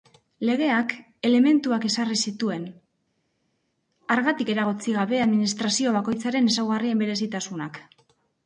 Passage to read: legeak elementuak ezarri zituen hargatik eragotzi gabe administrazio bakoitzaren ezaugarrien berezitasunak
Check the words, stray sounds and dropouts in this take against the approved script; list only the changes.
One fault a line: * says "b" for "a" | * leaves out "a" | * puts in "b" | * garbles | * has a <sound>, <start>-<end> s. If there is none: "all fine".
all fine